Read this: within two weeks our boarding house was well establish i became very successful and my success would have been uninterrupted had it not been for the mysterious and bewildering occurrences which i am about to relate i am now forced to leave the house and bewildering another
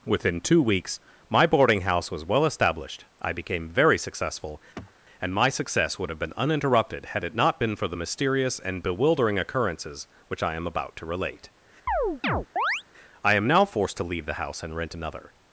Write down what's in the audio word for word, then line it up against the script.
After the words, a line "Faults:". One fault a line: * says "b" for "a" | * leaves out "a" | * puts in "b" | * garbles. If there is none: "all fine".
within two weeks my boarding house was well established i became very successful and my success would have been uninterrupted had it not been for the mysterious and bewildering occurrences which i am about to relate i am now forced to leave the house and rent another
Faults:
* says "my" for "our"
* says "established" for "establish"
* says "rent" for "bewildering"